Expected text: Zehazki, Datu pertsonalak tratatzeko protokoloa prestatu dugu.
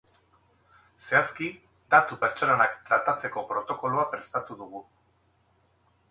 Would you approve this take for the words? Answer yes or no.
yes